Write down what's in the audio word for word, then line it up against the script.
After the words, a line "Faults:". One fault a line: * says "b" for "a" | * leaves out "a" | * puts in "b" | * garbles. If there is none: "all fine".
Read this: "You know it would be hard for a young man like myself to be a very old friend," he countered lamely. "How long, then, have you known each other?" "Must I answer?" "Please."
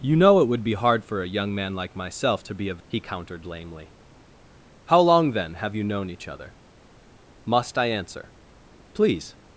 "You know it would be hard for a young man like myself to be a," he countered lamely. "How long, then, have you known each other?" "Must I answer?" "Please."
Faults:
* leaves out "very old friend"